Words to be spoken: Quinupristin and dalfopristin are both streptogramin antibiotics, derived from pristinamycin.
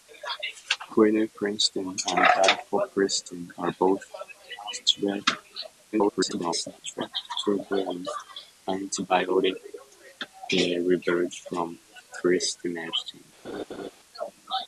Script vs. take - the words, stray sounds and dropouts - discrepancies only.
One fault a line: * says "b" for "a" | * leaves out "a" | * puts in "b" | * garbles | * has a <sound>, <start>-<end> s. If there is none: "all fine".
* garbles
* has a laugh, 13.4-13.9 s